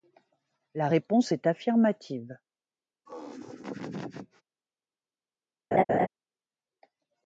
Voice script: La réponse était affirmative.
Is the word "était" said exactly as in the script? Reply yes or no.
no